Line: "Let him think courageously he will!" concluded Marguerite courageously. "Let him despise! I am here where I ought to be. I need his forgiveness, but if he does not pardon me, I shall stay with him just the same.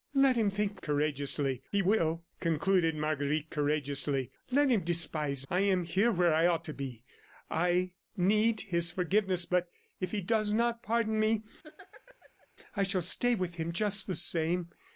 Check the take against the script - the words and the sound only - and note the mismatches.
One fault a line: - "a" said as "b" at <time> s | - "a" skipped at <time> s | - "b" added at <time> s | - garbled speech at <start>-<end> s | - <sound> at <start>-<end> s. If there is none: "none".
- laugh at 11.6-12.5 s